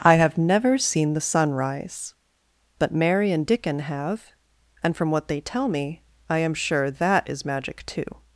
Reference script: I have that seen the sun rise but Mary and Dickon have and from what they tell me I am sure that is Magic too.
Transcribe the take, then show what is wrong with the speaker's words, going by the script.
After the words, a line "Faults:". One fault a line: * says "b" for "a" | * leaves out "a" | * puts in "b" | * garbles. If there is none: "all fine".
I have never seen the sun rise but Mary and Dickon have and from what they tell me I am sure that is Magic too.
Faults:
* says "never" for "that"